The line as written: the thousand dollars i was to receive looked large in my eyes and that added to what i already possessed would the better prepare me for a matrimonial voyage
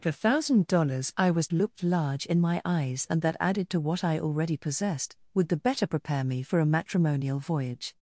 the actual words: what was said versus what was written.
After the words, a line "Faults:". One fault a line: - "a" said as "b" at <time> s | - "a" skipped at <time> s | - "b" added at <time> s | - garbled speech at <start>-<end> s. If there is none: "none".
the thousand dollars i was looked large in my eyes and that added to what i already possessed would the better prepare me for a matrimonial voyage
Faults:
- "to receive" skipped at 1.5 s